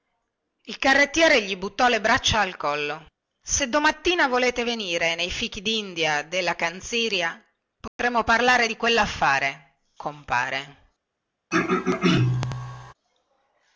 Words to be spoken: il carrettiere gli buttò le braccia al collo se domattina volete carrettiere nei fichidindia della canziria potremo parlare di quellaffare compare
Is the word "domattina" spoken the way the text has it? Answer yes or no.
yes